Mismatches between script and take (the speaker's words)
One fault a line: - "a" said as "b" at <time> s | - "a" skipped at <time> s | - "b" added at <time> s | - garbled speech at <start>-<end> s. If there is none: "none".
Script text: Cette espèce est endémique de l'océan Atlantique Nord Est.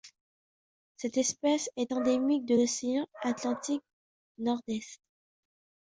none